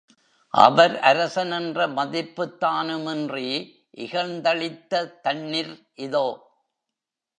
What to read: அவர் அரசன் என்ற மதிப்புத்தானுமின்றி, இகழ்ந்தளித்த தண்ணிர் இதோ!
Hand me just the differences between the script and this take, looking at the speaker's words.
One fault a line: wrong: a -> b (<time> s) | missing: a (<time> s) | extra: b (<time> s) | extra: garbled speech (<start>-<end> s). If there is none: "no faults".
no faults